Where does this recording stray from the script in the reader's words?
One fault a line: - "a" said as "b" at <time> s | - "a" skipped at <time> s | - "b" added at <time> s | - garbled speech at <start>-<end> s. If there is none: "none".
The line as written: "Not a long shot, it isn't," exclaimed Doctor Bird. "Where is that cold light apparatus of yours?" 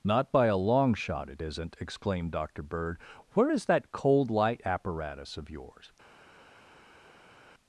- "by" added at 0.3 s